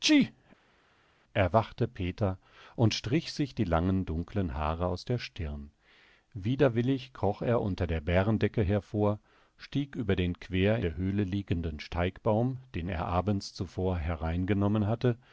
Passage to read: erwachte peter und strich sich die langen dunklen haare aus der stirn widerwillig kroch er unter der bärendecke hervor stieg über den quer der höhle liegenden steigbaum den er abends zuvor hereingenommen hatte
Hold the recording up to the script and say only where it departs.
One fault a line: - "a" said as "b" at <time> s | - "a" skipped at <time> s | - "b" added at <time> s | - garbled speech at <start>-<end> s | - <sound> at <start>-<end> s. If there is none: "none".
none